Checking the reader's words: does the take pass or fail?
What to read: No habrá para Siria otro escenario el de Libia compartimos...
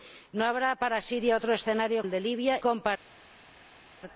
pass